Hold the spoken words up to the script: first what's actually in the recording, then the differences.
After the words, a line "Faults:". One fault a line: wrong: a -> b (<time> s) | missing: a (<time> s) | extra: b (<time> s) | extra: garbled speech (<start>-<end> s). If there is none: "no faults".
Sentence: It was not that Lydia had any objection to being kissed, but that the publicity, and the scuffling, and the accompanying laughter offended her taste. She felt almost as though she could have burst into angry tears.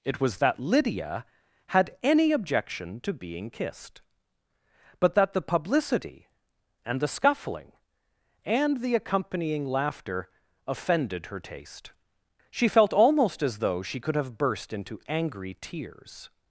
It was that Lydia had any objection to being kissed, but that the publicity, and the scuffling, and the accompanying laughter offended her taste. She felt almost as though she could have burst into angry tears.
Faults:
missing: not (0.4 s)